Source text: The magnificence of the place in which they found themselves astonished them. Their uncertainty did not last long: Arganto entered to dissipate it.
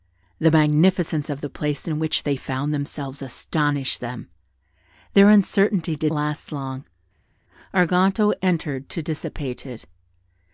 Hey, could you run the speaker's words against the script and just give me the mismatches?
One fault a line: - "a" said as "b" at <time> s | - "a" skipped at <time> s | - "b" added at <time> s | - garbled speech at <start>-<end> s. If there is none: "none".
- "not" skipped at 6.1 s